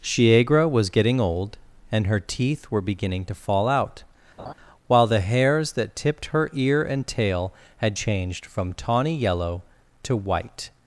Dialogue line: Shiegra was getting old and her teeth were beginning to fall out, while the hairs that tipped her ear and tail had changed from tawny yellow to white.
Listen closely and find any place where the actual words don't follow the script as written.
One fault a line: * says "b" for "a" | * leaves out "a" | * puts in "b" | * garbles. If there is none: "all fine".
all fine